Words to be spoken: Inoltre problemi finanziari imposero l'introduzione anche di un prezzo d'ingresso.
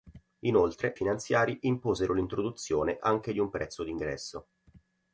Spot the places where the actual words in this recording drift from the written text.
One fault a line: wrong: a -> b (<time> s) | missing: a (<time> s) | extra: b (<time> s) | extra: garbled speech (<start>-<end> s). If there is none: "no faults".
missing: problemi (0.9 s)